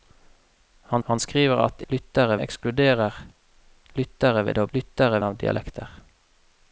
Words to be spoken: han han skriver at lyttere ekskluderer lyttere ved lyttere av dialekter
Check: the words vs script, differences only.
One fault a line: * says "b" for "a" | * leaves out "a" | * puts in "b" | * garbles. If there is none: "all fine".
all fine